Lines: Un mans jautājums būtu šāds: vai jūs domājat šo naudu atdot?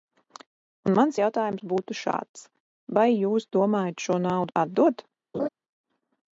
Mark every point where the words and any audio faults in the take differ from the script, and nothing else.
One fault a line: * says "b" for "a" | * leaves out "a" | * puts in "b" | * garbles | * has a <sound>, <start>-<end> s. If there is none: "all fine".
* has a laugh, 5.3-5.5 s